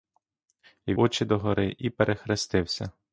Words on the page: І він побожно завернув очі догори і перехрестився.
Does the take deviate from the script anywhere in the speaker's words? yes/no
yes